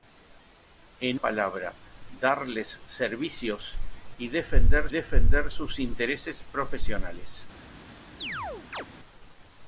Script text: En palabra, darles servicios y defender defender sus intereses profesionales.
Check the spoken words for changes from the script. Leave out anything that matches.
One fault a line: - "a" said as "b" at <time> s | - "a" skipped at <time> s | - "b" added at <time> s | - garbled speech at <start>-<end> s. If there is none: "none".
none